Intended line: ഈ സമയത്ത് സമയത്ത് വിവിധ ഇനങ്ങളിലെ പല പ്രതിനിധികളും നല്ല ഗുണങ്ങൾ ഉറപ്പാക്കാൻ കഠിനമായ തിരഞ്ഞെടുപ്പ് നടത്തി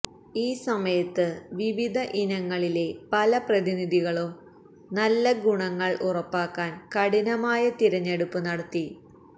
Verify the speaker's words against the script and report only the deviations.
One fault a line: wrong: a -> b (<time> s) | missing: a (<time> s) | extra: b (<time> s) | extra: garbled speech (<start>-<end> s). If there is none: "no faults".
missing: സമയത്ത് (1.2 s)